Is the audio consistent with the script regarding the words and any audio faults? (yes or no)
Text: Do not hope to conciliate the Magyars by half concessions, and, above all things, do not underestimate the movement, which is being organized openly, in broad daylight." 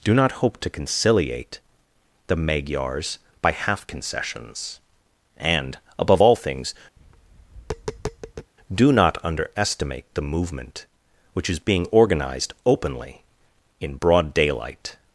no